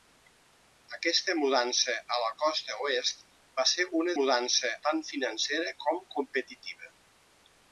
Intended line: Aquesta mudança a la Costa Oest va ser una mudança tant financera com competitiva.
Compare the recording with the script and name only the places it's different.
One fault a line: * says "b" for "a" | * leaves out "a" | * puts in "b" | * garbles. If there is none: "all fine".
all fine